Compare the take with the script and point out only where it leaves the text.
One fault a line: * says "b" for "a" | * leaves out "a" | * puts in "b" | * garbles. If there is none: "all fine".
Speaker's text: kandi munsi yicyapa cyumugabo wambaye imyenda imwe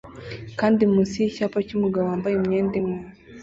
all fine